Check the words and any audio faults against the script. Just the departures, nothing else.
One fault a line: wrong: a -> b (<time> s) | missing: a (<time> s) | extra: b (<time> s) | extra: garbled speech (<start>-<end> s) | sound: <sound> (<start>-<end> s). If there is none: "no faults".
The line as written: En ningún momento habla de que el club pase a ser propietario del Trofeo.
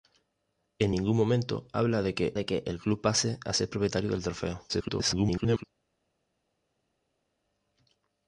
extra: de que (2.3 s)
extra: garbled speech (4.7-5.6 s)